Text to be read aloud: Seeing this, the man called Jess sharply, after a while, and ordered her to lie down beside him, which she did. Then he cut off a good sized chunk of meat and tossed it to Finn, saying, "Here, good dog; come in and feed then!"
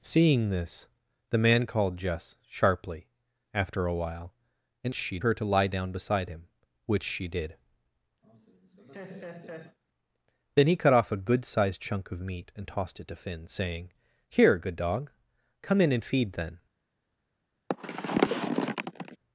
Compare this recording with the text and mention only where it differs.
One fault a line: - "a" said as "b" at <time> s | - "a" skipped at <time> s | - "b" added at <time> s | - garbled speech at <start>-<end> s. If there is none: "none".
- "ordered" said as "she" at 4.9 s